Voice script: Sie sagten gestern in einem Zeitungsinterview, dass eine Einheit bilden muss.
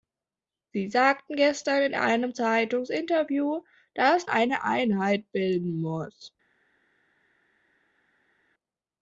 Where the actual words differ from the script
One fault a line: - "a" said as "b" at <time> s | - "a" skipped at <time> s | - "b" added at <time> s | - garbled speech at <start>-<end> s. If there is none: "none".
none